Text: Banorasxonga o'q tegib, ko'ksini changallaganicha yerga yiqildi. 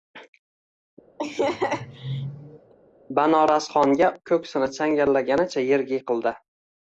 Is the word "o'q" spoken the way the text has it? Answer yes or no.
no